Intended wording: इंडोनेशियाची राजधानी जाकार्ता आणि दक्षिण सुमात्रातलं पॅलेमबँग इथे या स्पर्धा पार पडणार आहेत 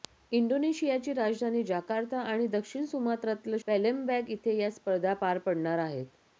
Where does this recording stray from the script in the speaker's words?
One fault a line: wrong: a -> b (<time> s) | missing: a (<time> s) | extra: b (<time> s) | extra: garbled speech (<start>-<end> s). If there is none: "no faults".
no faults